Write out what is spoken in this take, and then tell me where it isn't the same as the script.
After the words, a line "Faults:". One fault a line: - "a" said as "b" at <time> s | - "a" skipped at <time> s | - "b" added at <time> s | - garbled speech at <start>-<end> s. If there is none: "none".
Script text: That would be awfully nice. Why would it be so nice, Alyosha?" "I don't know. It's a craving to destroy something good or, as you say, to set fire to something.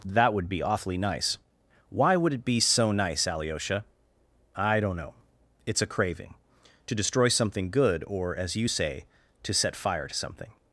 That would be awfully nice. Why would it be so nice, Alyosha?" "I don't know. It's a craving to destroy something good or, as you say, to set fire to something.
Faults:
none